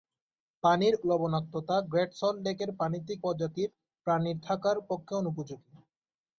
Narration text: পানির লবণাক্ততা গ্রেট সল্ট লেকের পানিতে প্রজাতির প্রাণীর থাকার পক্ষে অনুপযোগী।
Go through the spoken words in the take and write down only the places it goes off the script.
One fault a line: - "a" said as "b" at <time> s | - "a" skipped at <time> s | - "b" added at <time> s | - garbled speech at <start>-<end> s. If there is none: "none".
none